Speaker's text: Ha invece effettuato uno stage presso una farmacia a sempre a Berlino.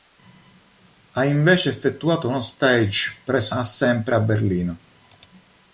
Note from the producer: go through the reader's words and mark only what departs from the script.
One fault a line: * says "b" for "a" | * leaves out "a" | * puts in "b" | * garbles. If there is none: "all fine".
* leaves out "una farmacia"